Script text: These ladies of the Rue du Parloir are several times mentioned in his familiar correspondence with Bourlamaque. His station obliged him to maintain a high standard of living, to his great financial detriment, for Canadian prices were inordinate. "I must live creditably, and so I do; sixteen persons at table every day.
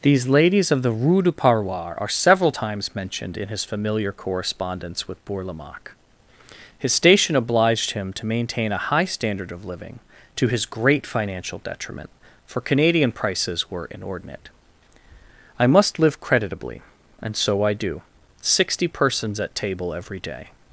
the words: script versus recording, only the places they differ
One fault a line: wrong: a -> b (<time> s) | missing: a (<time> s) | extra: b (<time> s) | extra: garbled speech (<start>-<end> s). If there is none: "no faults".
wrong: sixteen -> sixty (18.4 s)